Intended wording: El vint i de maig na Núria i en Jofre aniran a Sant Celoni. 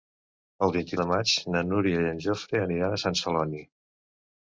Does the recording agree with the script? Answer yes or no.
yes